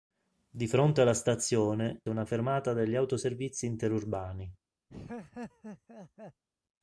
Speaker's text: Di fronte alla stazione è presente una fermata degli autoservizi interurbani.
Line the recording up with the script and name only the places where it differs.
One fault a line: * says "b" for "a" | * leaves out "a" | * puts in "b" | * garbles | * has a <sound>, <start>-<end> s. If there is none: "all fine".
* leaves out "è presente"
* has a laugh, 4.9-6.4 s